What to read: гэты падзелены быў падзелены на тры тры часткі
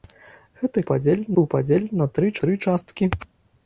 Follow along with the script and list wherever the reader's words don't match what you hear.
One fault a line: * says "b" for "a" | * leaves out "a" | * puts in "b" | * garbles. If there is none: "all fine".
all fine